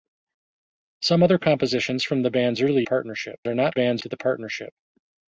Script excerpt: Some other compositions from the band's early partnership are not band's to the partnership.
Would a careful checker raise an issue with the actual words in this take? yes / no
no